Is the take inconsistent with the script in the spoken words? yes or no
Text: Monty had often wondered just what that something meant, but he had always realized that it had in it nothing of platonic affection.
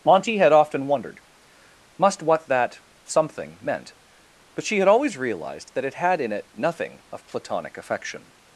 yes